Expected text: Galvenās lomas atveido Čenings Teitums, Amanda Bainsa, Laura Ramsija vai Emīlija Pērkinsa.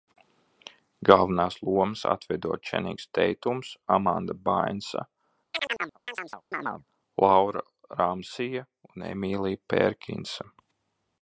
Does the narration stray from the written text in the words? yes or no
yes